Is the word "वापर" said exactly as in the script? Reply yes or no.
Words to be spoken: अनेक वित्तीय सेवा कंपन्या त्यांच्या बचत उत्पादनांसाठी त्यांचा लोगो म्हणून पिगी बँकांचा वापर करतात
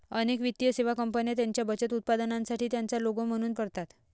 no